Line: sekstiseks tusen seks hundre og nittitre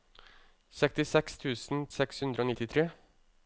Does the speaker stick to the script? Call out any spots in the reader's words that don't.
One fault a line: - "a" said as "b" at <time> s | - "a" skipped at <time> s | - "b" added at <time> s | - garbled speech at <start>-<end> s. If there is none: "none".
none